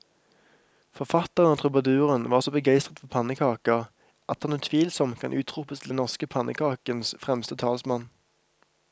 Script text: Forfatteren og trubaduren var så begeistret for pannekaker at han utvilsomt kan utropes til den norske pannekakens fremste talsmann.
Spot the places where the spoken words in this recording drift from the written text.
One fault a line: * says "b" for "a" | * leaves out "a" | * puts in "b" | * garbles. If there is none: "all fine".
all fine